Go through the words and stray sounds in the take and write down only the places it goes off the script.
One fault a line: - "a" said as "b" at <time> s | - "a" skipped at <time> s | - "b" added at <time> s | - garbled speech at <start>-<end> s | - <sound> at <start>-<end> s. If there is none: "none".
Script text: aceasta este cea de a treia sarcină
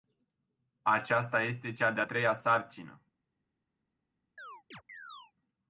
- chirp at 4.4-5.3 s